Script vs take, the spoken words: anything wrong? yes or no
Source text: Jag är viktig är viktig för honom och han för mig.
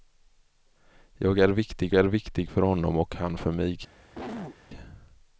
no